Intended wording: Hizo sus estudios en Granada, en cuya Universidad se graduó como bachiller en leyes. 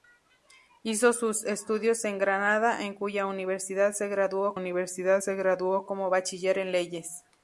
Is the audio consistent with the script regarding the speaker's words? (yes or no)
no